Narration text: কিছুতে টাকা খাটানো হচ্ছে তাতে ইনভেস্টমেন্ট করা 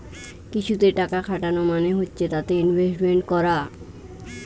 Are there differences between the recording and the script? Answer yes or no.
yes